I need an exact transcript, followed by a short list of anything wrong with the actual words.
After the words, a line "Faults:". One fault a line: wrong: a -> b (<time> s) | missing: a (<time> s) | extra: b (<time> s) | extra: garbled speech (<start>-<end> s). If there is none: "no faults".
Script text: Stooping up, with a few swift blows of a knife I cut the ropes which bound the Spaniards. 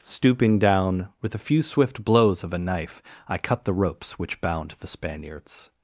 Stooping down, with a few swift blows of a knife I cut the ropes which bound the Spaniards.
Faults:
wrong: up -> down (0.6 s)